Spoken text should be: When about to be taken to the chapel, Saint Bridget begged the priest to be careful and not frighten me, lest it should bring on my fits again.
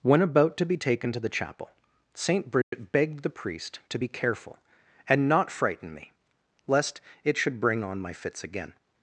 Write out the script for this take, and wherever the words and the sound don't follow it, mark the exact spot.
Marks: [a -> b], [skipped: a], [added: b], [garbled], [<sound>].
When about to be taken to the chapel, Saint Bridget [dropout] begged the priest to be careful and not frighten me, lest it should bring on my fits again.